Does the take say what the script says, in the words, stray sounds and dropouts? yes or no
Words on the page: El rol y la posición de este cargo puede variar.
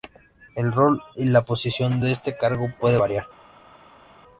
yes